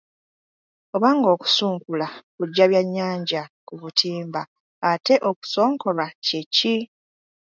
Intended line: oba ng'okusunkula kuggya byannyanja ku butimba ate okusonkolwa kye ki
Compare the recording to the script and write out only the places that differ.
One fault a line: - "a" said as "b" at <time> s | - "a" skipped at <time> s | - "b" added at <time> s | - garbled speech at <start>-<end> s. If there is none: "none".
none